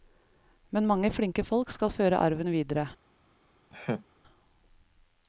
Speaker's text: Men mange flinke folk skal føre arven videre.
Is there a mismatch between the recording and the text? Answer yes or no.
no